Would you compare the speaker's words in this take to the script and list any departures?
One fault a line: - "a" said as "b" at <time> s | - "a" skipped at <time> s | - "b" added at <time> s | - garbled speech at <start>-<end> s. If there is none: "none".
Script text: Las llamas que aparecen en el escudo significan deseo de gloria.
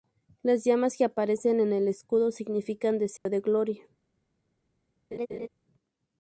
none